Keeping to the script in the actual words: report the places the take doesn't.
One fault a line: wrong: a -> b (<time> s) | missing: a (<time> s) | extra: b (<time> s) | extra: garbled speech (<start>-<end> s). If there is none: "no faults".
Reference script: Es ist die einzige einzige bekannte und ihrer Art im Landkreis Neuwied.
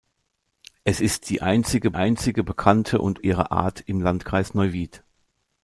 no faults